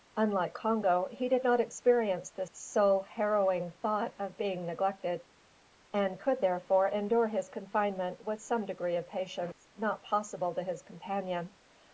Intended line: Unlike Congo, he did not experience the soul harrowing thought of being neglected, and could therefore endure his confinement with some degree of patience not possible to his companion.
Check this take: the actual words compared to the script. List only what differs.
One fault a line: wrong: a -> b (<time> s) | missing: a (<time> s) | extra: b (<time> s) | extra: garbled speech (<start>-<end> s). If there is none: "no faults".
no faults